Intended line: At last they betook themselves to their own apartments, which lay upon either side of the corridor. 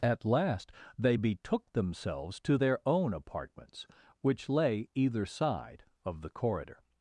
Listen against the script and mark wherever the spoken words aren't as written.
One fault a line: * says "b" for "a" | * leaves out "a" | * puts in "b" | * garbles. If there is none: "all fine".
* leaves out "upon"